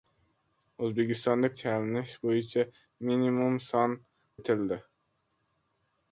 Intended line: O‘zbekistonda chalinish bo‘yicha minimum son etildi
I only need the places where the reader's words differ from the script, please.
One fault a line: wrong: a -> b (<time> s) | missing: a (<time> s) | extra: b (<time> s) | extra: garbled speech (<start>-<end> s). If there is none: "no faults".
no faults